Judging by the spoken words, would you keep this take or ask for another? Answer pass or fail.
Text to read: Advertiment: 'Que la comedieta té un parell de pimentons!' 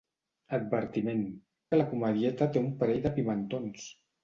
pass